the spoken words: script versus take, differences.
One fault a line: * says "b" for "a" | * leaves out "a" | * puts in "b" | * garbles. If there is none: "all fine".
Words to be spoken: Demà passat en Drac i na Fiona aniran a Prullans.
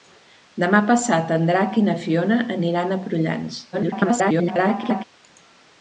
* garbles